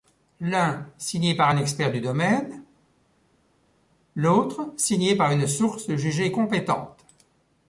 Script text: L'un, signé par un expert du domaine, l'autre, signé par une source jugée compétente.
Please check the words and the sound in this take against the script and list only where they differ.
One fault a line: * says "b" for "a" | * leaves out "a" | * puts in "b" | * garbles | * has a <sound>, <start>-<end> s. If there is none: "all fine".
all fine